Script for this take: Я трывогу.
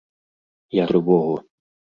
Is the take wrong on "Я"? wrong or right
right